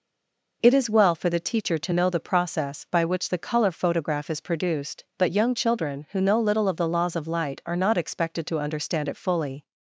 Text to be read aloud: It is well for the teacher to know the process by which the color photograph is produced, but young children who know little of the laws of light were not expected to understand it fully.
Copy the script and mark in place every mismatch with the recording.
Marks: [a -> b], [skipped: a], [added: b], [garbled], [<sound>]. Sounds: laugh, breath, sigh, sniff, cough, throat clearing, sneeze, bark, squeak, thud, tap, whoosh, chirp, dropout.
It is well for the teacher to know the process by which the color photograph is produced, but young children who know little of the laws of light [were -> are] not expected to understand it fully.